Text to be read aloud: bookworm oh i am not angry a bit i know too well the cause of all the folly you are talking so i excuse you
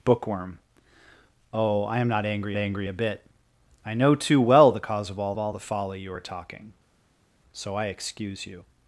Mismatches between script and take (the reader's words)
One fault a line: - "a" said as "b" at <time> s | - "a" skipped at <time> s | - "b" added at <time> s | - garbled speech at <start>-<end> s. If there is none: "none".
- "angry" added at 2.6 s
- "all" added at 5.4 s